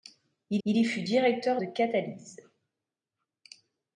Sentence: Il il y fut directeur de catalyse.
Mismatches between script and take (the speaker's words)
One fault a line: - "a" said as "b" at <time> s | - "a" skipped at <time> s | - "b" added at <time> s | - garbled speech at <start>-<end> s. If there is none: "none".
none